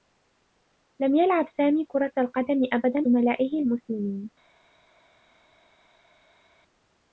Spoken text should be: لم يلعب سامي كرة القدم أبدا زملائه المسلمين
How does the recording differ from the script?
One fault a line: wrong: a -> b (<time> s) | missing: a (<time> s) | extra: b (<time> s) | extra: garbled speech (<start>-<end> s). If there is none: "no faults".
no faults